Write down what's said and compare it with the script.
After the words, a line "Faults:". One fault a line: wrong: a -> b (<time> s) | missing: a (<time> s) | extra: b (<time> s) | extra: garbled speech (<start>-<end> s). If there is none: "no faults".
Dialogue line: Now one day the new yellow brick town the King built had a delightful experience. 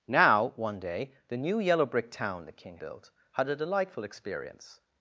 Now one day the new yellow brick town the King built had a delightful experience.
Faults:
no faults